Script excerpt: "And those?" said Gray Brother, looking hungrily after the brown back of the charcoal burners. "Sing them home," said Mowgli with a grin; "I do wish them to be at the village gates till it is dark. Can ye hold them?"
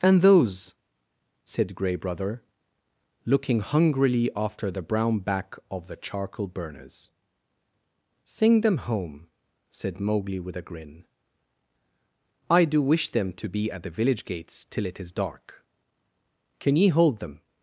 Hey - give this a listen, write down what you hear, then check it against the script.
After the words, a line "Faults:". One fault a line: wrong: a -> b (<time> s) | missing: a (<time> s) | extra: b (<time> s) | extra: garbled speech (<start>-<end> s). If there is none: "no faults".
"And those?" said Gray Brother, looking hungrily after the brown back of the charcoal burners. "Sing them home," said Mowgli with a grin; "I do wish them to be at the village gates till it is dark. Can ye hold them?"
Faults:
no faults